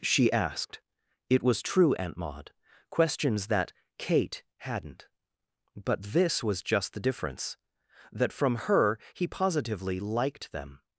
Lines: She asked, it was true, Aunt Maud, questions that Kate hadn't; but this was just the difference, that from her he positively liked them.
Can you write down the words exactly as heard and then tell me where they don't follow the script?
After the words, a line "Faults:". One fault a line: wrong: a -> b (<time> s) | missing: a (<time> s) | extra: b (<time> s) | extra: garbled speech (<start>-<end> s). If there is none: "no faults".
She asked, it was true, Aunt Maud, questions that Kate hadn't; but this was just the difference, that from her he positively liked them.
Faults:
no faults